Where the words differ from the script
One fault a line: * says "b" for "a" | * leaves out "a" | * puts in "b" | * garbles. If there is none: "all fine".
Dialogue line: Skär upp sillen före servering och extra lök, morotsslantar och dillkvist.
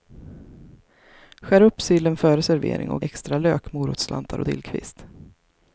all fine